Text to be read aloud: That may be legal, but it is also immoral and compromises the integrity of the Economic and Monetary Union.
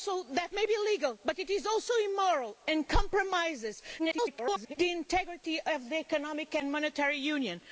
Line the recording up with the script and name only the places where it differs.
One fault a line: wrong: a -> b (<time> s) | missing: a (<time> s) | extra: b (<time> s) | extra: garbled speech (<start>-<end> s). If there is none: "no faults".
extra: garbled speech (4.0-4.8 s)